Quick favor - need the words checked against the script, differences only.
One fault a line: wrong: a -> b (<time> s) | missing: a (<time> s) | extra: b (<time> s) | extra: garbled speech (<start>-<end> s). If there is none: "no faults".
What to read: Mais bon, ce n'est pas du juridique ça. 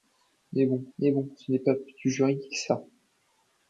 extra: mais bon (1.0 s)